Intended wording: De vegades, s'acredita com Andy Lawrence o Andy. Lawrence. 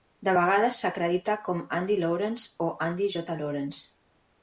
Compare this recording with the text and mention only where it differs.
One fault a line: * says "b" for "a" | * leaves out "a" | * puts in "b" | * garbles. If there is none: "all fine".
* puts in "J"